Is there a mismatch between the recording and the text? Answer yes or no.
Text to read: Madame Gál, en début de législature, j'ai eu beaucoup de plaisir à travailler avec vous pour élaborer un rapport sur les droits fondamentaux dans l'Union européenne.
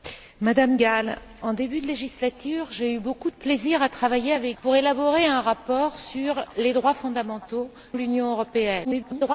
yes